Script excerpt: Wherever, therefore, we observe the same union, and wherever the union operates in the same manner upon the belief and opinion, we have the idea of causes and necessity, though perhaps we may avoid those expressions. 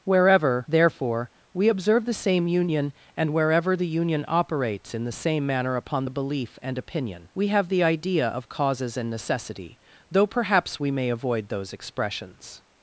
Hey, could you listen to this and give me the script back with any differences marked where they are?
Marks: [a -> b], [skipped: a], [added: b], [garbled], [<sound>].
Wherever, therefore, we observe the same union, and wherever the union operates in the same manner upon the belief and opinion, we have the idea of causes and necessity, though perhaps we may avoid those expressions.